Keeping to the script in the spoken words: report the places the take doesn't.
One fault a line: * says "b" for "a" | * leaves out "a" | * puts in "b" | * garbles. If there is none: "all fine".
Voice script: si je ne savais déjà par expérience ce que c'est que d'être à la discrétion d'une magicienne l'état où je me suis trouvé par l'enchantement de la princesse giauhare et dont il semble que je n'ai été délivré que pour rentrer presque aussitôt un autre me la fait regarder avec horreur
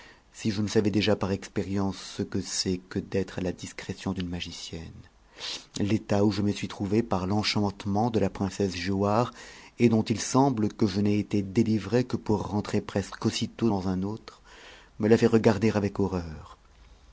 * puts in "dans"